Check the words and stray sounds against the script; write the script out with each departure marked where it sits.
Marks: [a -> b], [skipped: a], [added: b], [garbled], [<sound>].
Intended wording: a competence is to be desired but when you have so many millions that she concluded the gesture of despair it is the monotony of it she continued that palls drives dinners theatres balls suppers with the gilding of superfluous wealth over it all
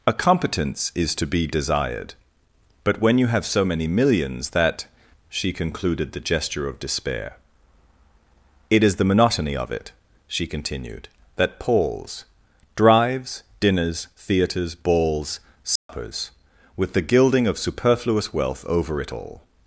a competence is to be desired but when you have so many millions that she concluded the gesture of despair it is the monotony of it she continued that palls drives dinners theatres balls suppers [dropout] with the gilding of superfluous wealth over it all